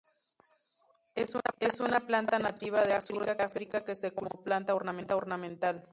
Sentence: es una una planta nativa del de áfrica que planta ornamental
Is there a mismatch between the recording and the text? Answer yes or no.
yes